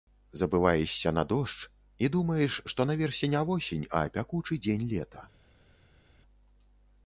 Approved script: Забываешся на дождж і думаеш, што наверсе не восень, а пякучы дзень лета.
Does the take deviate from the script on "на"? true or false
false